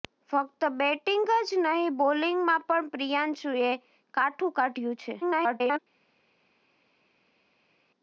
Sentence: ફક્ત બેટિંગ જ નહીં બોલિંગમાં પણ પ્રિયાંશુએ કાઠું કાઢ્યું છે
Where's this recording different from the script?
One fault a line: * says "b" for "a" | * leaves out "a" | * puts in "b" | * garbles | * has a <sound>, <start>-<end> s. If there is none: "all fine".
* garbles